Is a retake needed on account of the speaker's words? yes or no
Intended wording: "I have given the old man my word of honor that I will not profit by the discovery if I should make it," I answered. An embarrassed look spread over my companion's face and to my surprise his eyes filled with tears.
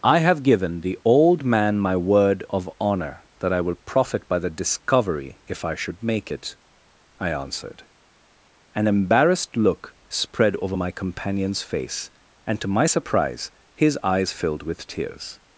yes